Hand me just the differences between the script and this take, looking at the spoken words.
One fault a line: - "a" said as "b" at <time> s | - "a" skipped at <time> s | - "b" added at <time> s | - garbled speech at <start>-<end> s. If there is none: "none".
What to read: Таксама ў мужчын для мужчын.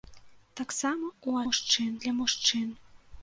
none